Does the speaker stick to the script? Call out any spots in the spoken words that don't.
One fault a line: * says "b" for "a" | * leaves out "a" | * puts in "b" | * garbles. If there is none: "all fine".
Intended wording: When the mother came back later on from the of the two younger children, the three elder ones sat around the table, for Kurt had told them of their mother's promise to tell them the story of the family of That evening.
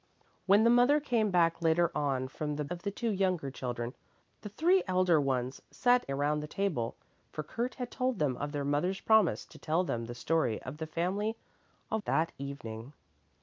all fine